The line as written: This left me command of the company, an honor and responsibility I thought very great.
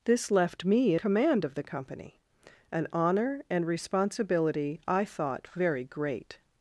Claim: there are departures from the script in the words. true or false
false